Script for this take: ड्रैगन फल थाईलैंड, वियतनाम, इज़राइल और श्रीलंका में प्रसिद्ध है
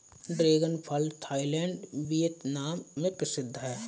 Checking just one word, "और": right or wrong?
wrong